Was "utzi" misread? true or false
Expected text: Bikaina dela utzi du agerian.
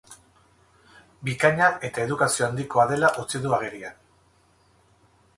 false